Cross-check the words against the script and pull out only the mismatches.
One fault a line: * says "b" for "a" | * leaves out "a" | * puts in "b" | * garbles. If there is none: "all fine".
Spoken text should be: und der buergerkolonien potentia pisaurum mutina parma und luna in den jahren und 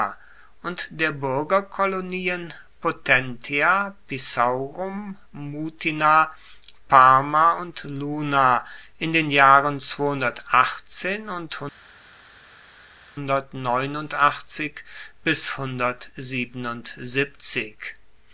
all fine